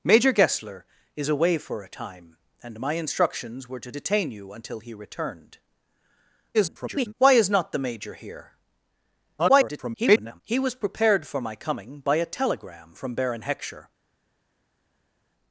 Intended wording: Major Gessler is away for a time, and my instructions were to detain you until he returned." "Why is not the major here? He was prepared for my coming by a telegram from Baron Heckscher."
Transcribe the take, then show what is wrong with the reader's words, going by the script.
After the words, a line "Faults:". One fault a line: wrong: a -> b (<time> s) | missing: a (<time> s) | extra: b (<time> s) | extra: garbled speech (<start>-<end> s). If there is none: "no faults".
Major Gessler is away for a time, and my instructions were to detain you until he returned." [garbled] "Why is not the major here? [garbled] He was prepared for my coming by a telegram from Baron Heckscher."
Faults:
extra: garbled speech (6.5-7.1 s)
extra: garbled speech (9.4-10.4 s)